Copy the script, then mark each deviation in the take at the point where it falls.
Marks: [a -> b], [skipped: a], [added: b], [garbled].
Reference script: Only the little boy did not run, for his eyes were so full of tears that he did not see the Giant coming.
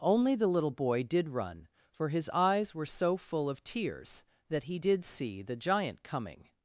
Only the little boy did [skipped: not] run, for his eyes were so full of tears that he did [skipped: not] see the Giant coming.